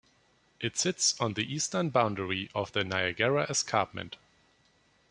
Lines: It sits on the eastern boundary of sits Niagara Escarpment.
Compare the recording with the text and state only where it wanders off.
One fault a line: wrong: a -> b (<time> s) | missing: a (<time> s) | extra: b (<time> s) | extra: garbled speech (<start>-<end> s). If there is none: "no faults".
wrong: sits -> the (2.7 s)